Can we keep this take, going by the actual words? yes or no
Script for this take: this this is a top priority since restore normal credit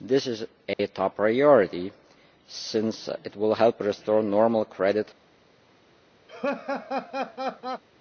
no